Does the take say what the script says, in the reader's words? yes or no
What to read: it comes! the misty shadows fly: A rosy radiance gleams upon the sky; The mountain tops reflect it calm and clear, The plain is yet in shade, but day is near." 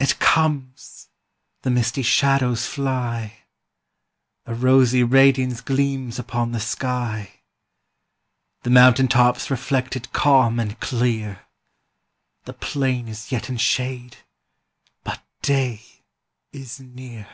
yes